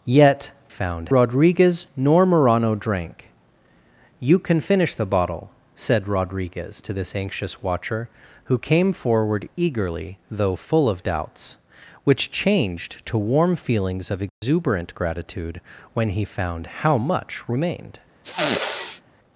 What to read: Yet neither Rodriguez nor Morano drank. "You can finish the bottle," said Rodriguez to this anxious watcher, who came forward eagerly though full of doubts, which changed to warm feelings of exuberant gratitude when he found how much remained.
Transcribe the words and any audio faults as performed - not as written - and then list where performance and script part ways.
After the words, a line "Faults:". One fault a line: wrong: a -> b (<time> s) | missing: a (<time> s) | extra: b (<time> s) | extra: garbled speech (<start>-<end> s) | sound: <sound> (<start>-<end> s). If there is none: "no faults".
Yet found Rodriguez nor Morano drank. "You can finish the bottle," said Rodriguez to this anxious watcher, who came forward eagerly though full of doubts, which changed to warm feelings of exuberant gratitude when he found how much remained.
Faults:
wrong: neither -> found (0.7 s)
sound: dropout (14.3-14.4 s)
sound: sniff (18.2-19.0 s)